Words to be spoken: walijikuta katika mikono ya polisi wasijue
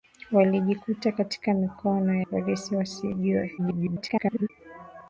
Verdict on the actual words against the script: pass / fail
fail